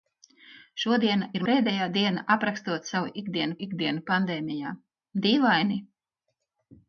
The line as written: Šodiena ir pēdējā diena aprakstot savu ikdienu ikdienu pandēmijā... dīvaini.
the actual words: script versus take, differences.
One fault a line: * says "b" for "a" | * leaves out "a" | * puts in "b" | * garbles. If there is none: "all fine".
all fine